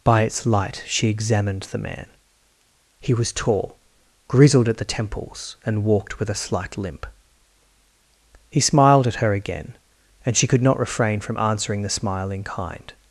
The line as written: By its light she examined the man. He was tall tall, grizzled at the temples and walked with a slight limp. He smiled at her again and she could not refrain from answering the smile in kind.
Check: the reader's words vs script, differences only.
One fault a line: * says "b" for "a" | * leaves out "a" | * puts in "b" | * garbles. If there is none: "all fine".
* leaves out "tall"